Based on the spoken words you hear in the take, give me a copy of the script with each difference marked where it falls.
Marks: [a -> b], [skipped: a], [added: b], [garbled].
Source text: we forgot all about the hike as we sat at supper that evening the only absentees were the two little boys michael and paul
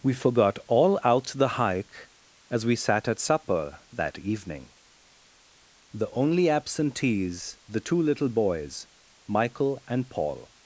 we forgot all [about -> out] the hike as we sat at supper that evening the only absentees [skipped: were] the two little boys michael and paul